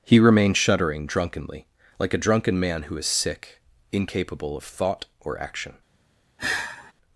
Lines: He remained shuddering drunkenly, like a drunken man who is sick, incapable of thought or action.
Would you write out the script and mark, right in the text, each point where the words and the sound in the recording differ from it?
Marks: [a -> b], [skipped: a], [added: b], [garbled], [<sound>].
He remained shuddering drunkenly, like a drunken man who is sick, incapable of thought or action. [sigh]